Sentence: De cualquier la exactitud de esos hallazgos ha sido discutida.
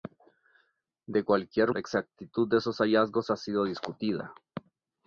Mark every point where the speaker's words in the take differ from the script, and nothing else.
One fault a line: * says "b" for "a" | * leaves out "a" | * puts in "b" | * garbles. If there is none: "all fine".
all fine